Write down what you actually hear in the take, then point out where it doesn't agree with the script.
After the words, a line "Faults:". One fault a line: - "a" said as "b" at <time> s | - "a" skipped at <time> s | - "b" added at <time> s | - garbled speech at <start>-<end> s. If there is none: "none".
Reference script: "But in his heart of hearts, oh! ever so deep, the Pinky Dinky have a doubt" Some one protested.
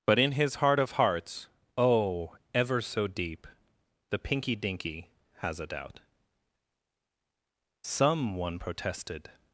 "But in his heart of hearts, oh! ever so deep, the Pinky Dinky has a doubt" Some one protested.
Faults:
- "have" said as "has" at 5.4 s